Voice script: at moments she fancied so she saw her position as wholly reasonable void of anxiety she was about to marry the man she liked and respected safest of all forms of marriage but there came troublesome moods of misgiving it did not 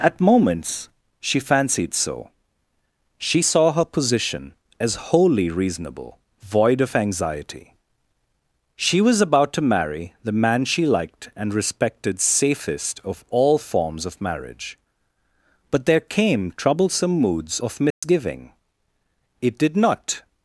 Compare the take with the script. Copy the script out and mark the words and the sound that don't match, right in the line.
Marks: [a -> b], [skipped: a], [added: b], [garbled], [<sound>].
at moments she fancied so she saw her position as wholly reasonable void of anxiety she was about to marry the man she liked and respected safest of all forms of marriage but there came troublesome moods of misgiving [dropout] it did not